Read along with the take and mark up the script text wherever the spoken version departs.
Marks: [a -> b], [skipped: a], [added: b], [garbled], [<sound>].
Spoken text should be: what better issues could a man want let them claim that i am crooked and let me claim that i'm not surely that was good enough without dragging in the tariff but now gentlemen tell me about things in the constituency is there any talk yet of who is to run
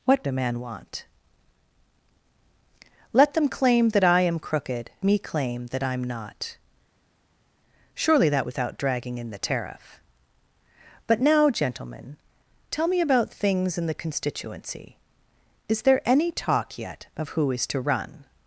what [skipped: better issues could] a man want let them claim that i am crooked [skipped: and let] me claim that i'm not surely that [skipped: was good enough] without dragging in the tariff but now gentlemen tell me about things in the constituency is there any talk yet of who is to run